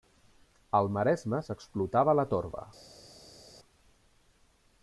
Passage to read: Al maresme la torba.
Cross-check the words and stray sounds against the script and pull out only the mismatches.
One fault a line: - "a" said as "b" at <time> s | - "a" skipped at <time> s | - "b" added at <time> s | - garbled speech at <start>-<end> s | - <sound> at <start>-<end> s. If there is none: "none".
- "s'explotava" added at 1.5 s